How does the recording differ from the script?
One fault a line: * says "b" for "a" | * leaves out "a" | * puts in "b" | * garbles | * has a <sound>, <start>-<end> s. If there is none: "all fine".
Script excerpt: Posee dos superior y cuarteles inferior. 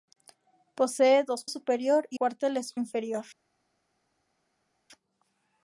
all fine